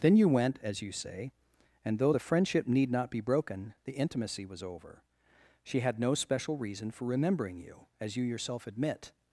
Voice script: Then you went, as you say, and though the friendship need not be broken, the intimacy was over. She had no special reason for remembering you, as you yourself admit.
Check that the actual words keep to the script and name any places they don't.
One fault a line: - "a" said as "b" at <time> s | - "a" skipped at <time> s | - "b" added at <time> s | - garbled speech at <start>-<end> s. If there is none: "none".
none